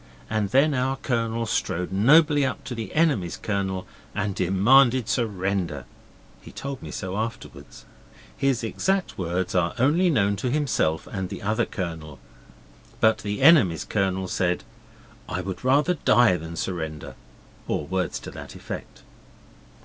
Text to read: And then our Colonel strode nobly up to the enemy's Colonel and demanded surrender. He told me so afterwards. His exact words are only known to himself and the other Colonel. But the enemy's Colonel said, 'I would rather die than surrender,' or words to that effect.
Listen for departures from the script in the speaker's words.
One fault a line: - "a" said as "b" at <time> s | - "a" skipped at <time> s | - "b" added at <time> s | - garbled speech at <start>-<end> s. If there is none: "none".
none